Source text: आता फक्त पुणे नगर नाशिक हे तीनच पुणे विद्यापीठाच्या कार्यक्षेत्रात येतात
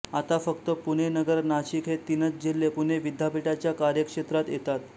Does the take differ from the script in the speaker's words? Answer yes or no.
yes